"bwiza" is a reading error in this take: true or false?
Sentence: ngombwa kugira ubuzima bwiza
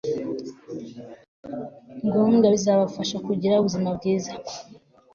false